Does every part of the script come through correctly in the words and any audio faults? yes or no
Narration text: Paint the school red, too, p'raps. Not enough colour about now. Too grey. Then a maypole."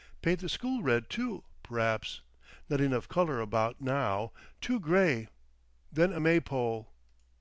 yes